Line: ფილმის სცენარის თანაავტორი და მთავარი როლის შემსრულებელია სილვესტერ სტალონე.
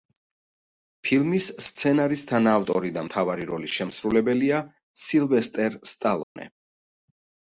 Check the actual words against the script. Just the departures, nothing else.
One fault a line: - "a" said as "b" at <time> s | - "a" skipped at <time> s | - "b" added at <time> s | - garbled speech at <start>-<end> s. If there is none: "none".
none